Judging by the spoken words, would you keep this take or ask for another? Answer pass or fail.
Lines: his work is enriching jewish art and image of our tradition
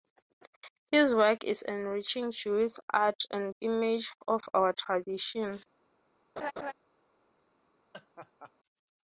pass